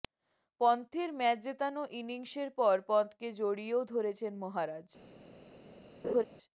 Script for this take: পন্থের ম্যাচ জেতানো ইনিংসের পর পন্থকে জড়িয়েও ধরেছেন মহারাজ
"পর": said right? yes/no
yes